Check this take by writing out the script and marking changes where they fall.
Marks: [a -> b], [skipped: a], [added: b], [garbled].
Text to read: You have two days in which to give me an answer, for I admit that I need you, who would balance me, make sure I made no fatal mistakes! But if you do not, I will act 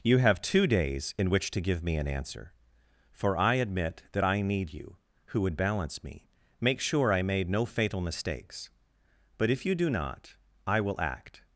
You have two days in which to give me an answer, for I admit that I need you, who would balance me, make sure I made no fatal mistakes! But if you do not, I will act